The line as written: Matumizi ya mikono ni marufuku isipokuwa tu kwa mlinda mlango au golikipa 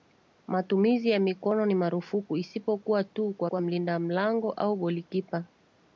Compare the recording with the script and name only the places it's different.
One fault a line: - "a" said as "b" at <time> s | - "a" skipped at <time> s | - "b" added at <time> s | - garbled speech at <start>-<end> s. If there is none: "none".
- "kwa" added at 3.4 s